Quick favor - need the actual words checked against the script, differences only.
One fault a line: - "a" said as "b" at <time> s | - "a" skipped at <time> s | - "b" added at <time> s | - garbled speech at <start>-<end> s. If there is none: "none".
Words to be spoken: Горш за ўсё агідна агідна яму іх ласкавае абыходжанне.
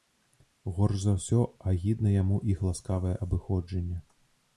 - "агідна" skipped at 2.1 s